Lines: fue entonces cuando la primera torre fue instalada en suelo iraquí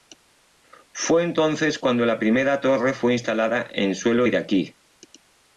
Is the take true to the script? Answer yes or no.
yes